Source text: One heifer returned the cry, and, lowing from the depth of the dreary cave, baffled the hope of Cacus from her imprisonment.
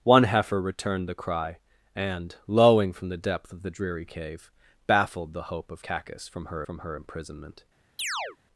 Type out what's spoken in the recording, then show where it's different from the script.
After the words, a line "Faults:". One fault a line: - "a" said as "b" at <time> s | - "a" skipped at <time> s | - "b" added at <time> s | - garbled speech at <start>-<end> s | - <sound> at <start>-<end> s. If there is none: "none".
One heifer returned the cry, and, lowing from the depth of the dreary cave, baffled the hope of Cacus from her from her imprisonment.
Faults:
- "from her" added at 6.6 s
- chirp at 8.0-8.4 s